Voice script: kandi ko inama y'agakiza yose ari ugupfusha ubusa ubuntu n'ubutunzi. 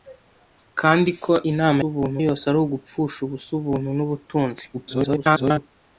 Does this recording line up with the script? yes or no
no